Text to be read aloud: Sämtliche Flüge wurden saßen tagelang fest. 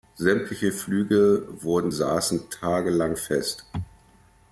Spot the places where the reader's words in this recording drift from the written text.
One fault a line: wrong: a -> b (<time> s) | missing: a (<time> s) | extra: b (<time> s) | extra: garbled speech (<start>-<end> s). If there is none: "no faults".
no faults